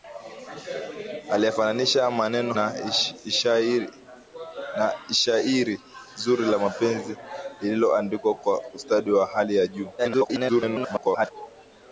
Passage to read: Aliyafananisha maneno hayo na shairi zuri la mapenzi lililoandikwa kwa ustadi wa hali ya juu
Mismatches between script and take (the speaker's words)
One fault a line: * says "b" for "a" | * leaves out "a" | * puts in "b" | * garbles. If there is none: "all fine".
* leaves out "hayo"
* garbles